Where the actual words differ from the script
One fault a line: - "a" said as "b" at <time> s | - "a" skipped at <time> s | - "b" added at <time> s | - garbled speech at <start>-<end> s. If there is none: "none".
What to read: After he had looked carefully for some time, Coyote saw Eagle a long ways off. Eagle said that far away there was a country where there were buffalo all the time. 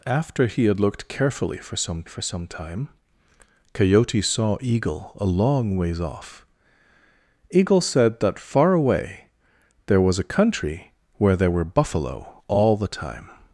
- "for some" added at 2.0 s